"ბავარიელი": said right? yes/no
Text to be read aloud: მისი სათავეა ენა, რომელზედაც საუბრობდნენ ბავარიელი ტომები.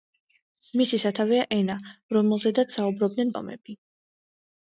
no